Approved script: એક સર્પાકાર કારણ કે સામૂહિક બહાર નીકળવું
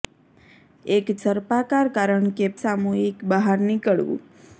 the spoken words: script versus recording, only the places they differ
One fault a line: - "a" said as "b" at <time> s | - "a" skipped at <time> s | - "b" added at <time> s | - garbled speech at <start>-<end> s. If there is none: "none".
none